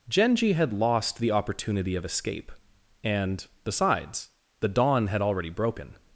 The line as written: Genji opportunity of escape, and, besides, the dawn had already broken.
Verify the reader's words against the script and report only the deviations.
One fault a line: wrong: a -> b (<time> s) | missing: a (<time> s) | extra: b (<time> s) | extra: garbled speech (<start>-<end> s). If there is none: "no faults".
extra: had lost the (0.5 s)